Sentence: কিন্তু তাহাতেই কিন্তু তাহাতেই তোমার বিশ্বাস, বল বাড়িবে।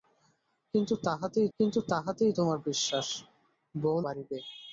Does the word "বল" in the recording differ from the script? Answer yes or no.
no